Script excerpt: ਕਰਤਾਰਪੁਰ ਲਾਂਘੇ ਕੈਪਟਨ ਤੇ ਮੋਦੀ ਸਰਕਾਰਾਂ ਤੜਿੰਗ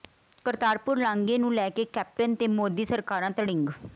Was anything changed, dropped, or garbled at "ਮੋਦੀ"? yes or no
no